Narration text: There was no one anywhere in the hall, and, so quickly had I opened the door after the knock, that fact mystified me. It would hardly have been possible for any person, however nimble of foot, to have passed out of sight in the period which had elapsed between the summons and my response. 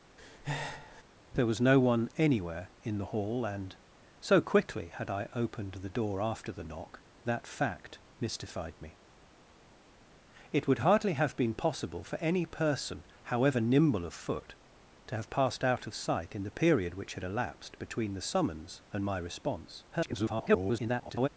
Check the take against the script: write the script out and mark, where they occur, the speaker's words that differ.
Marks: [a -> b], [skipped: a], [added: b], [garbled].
There was no one anywhere in the hall, and, so quickly had I opened the door after the knock, that fact mystified me. It would hardly have been possible for any person, however nimble of foot, to have passed out of sight in the period which had elapsed between the summons and my response. [garbled]